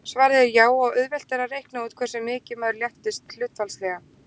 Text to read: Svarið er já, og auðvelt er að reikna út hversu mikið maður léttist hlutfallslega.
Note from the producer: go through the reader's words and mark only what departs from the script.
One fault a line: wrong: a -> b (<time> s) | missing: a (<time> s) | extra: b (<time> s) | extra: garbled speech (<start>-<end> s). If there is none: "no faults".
no faults